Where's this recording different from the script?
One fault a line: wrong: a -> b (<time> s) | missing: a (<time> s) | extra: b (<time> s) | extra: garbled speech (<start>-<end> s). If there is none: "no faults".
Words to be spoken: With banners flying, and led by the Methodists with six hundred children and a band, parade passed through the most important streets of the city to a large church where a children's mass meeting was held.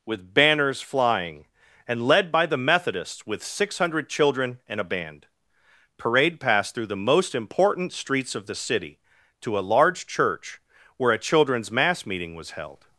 no faults